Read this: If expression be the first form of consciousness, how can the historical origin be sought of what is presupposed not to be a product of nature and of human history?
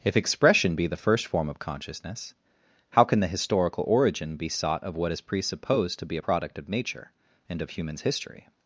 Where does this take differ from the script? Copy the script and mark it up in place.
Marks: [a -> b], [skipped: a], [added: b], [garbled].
If expression be the first form of consciousness, how can the historical origin be sought of what is presupposed [skipped: not] to be a product of nature and of [human -> humans] history?